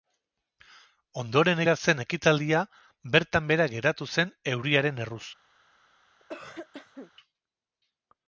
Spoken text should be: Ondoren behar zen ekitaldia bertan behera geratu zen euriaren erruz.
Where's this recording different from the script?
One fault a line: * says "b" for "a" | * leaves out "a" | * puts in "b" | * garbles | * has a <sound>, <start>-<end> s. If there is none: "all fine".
* has a cough, 6.2-7.1 s